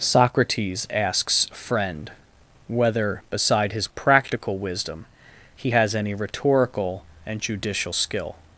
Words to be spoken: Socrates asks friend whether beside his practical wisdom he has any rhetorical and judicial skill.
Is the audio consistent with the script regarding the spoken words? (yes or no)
yes